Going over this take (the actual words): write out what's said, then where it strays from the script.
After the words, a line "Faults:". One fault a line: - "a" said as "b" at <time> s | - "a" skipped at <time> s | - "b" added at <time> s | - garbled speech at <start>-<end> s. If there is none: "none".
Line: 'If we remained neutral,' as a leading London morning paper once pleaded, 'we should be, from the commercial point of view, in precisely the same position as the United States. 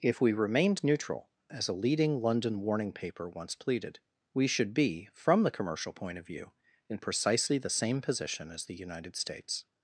'If we remained neutral,' as a leading London warning paper once pleaded, 'we should be, from the commercial point of view, in precisely the same position as the United States.
Faults:
- "morning" said as "warning" at 2.6 s